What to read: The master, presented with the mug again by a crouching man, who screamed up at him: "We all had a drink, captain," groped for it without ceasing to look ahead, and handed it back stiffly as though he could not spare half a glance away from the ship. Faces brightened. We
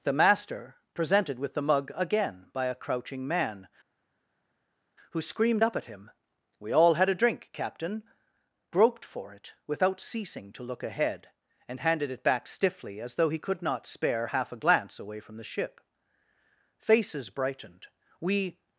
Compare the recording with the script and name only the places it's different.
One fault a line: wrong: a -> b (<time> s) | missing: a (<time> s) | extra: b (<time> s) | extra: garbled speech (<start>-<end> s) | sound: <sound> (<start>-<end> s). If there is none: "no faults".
no faults